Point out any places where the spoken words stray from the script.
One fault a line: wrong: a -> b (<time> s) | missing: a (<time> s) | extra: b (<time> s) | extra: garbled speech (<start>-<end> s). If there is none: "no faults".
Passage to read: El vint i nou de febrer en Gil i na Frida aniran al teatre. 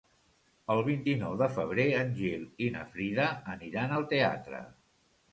no faults